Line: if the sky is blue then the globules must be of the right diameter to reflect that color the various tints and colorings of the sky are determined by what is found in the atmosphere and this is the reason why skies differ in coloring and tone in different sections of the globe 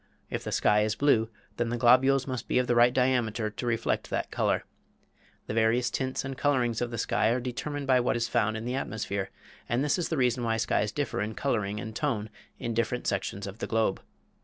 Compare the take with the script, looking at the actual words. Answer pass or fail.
pass